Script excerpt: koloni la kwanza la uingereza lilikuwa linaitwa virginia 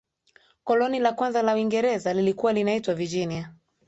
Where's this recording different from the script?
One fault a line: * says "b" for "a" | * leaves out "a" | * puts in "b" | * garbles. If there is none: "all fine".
all fine